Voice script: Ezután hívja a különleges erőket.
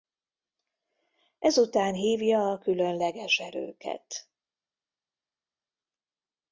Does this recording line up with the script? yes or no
yes